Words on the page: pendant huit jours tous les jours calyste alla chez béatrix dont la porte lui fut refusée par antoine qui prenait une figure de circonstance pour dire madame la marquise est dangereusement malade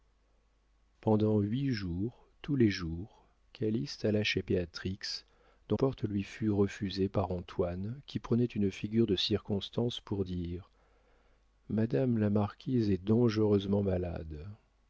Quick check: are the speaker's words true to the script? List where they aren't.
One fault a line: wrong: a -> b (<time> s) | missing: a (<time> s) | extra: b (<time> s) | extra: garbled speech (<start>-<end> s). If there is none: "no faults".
missing: la (5.8 s)